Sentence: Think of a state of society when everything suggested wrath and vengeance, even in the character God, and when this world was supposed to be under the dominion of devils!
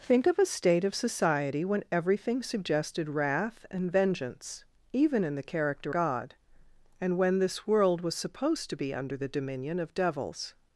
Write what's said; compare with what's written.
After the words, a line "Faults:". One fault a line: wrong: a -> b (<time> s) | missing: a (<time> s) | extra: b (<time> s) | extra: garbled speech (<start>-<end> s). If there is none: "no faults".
Think of a state of society when everything suggested wrath and vengeance, even in the character God, and when this world was supposed to be under the dominion of devils!
Faults:
no faults